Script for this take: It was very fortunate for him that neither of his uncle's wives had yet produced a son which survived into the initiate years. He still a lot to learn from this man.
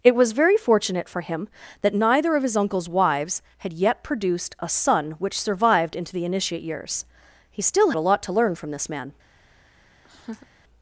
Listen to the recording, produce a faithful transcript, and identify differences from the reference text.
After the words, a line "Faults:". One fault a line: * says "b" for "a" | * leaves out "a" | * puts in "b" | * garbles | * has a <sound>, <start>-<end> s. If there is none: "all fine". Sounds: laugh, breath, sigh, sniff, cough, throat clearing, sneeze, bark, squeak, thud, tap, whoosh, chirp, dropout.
It was very fortunate for him that neither of his uncle's wives had yet produced a son which survived into the initiate years. He still a lot to learn from this man.
Faults:
* has a laugh, 10.0-10.5 s